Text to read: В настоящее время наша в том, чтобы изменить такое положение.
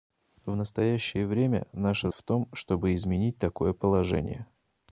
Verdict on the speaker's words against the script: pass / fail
pass